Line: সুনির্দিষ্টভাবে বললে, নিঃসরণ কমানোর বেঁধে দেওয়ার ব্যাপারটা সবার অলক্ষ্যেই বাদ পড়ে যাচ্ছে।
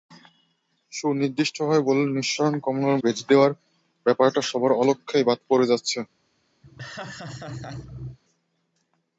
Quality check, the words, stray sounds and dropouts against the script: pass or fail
fail